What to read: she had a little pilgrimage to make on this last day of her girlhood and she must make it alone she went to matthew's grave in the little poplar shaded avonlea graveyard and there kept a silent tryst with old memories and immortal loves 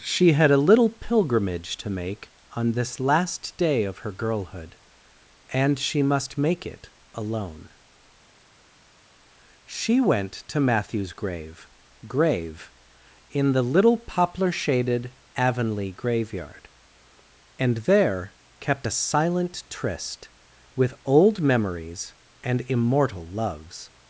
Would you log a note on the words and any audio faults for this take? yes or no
yes